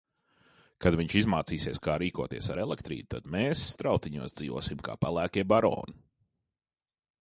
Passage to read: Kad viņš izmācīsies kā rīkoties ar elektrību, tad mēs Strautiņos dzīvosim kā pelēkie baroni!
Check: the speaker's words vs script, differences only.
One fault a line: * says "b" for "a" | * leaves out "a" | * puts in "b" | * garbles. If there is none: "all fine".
all fine